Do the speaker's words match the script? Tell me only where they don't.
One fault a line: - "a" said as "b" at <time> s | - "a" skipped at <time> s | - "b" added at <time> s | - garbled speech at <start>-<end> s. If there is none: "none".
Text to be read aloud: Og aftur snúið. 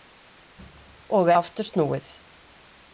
none